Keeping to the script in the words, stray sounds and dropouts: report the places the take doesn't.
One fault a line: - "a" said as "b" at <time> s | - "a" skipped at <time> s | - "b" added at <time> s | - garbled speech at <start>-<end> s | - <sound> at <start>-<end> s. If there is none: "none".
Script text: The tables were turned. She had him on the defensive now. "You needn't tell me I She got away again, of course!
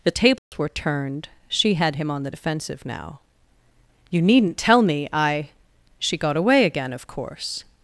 - dropout at 0.4-0.5 s